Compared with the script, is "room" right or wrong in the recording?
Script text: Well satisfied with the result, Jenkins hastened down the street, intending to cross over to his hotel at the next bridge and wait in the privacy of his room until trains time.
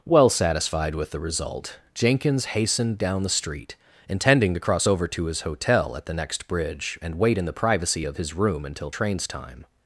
right